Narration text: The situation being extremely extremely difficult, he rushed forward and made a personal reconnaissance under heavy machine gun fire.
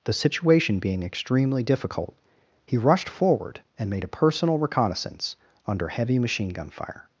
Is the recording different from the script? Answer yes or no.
yes